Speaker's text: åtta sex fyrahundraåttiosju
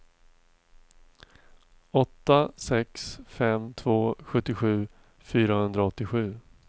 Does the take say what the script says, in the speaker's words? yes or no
no